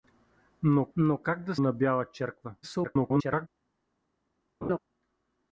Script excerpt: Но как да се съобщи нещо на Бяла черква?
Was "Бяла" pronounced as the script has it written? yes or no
yes